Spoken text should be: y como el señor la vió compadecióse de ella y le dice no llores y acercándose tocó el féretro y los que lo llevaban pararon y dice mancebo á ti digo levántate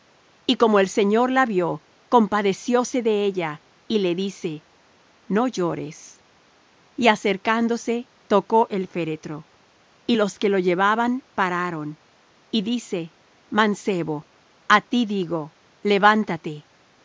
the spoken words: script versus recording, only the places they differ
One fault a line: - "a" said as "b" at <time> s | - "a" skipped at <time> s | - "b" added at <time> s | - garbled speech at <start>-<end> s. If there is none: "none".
none